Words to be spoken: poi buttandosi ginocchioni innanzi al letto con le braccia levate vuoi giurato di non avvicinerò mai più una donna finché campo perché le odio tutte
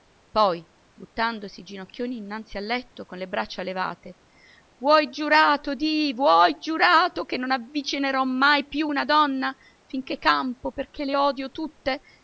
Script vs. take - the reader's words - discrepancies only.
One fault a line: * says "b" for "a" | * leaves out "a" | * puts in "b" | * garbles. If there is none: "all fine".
* puts in "vuoi giurato che"